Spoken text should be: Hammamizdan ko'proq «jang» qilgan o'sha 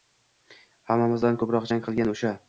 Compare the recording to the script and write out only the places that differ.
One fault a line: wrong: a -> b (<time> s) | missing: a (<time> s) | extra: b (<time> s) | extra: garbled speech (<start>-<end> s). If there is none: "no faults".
no faults